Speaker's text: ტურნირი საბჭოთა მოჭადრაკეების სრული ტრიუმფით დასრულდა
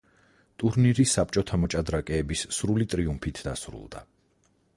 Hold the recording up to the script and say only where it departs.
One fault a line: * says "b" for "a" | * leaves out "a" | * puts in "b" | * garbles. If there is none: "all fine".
all fine